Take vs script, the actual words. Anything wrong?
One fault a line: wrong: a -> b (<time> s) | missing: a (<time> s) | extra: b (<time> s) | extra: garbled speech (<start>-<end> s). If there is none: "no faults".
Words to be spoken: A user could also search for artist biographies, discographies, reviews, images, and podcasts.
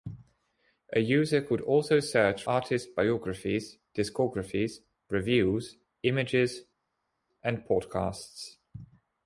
missing: for (2.4 s)